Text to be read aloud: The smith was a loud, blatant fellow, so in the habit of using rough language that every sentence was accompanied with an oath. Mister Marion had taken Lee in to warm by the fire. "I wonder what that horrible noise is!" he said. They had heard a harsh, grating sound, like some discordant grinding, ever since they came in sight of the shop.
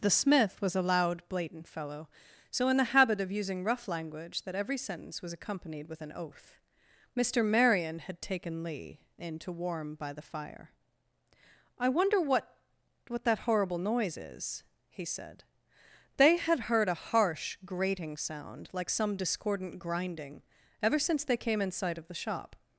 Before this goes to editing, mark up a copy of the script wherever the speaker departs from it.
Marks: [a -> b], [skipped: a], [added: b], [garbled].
The smith was a loud, blatant fellow, so in the habit of using rough language that every sentence was accompanied with an oath. Mister Marion had taken Lee in to warm by the fire. "I wonder what [added: what] that horrible noise is!" he said. They had heard a harsh, grating sound, like some discordant grinding, ever since they came in sight of the shop.